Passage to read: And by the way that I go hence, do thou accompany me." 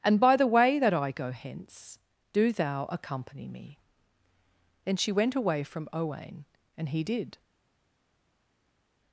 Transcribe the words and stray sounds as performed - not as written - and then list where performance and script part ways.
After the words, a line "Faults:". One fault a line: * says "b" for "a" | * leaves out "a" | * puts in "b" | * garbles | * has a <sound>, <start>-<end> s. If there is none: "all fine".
And by the way that I go hence, do thou accompany me." Then she went away from Owain, and he did
Faults:
* puts in "Then she went away from Owain and he did"